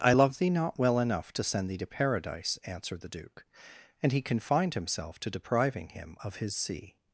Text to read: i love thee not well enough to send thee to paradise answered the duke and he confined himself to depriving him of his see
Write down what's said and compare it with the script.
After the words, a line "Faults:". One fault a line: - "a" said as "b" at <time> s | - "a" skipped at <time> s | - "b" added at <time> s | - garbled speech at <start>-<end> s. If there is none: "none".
i love thee not well enough to send thee to paradise answered the duke and he confined himself to depriving him of his see
Faults:
none